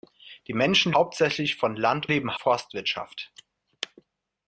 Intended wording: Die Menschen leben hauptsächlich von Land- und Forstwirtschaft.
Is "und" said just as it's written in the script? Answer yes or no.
no